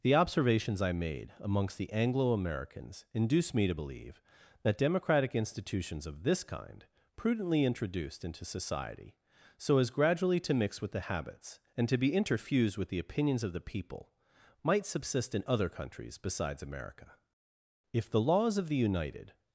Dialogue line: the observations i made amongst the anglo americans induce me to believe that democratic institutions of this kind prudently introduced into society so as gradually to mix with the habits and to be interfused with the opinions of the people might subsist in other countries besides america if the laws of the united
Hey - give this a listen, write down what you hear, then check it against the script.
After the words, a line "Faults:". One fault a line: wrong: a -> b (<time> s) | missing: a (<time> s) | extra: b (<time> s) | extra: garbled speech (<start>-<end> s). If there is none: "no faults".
the observations i made amongst the anglo americans induce me to believe that democratic institutions of this kind prudently introduced into society so as gradually to mix with the habits and to be interfused with the opinions of the people might subsist in other countries besides america if the laws of the united
Faults:
no faults